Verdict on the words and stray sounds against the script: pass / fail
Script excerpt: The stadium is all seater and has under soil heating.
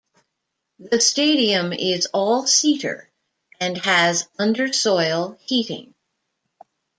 pass